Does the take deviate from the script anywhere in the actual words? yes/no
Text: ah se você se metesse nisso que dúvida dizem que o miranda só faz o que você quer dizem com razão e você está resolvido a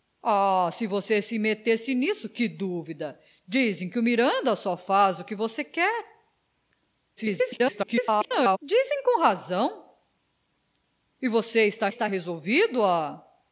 yes